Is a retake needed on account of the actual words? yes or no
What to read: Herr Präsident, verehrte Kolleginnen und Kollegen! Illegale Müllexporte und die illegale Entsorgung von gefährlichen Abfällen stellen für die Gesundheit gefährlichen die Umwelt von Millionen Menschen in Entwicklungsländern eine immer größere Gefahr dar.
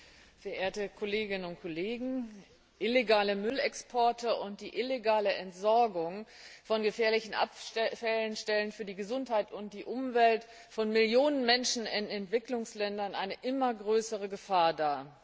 yes